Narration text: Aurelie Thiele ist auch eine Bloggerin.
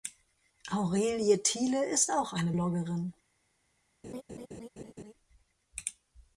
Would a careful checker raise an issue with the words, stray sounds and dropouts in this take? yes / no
yes